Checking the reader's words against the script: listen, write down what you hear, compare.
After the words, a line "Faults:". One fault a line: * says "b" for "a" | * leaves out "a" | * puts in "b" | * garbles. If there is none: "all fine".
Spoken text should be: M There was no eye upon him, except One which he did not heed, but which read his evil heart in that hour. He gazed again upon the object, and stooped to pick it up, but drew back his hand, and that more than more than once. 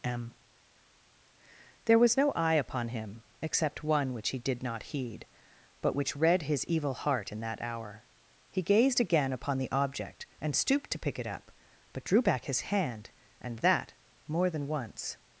M There was no eye upon him, except One which he did not heed, but which read his evil heart in that hour. He gazed again upon the object, and stooped to pick it up, but drew back his hand, and that more than once.
Faults:
* leaves out "more than"